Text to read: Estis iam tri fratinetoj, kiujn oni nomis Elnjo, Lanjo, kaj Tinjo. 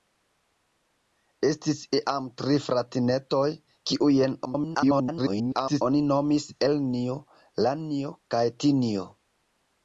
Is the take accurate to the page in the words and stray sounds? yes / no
no